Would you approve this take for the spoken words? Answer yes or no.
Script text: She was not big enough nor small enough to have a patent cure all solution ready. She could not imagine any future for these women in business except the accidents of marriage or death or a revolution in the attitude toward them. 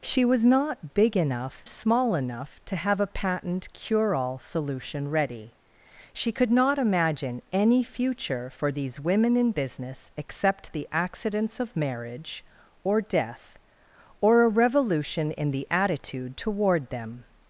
no